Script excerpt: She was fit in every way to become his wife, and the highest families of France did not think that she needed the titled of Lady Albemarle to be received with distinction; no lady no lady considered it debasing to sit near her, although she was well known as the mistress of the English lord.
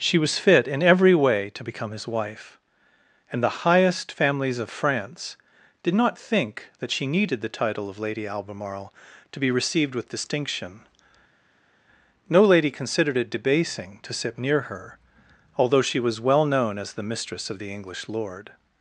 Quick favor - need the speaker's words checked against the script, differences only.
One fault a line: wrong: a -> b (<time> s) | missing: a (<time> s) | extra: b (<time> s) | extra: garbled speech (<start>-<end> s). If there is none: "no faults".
wrong: titled -> title (7.5 s)
missing: no lady (12.7 s)